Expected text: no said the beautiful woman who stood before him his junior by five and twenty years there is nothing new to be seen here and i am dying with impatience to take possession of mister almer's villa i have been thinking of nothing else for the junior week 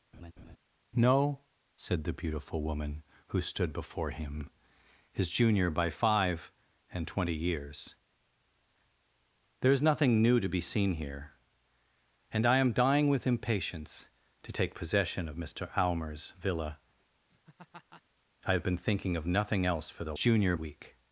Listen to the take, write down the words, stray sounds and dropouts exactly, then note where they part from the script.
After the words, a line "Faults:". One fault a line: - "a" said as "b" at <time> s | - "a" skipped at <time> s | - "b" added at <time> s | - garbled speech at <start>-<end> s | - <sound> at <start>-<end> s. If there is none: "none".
no said the beautiful woman who stood before him his junior by five and twenty years there is nothing new to be seen here and i am dying with impatience to take possession of mister almer's villa i have been thinking of nothing else for the junior week
Faults:
- laugh at 0.1-0.6 s
- laugh at 17.3-18.0 s